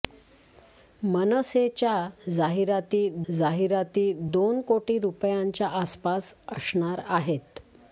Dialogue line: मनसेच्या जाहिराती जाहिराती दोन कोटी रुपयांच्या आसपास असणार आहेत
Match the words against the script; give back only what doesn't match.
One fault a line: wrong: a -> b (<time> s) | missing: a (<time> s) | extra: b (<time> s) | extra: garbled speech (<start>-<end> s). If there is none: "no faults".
no faults